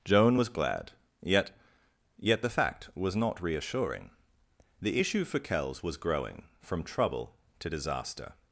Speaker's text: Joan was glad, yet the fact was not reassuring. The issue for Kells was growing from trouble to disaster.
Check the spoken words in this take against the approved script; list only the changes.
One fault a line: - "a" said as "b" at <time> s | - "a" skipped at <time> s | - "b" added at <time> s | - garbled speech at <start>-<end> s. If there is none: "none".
- "yet" added at 2.2 s